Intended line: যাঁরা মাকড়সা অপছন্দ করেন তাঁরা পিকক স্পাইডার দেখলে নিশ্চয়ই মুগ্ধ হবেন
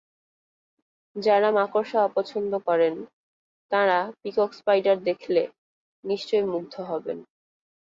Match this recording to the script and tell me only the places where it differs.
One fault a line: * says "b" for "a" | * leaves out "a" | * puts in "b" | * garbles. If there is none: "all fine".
all fine